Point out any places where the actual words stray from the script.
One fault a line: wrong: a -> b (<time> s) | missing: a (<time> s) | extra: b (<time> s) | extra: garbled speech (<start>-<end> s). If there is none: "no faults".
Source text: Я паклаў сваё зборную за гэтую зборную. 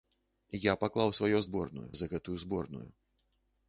no faults